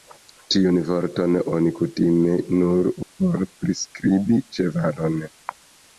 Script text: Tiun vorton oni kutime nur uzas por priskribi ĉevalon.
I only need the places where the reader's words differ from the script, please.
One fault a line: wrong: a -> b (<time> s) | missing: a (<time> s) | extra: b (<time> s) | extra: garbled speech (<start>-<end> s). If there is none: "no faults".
missing: uzas (2.9 s)